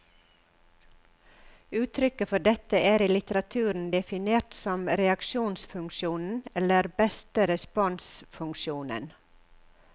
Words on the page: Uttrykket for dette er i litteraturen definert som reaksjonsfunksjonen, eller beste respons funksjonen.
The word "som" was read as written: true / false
true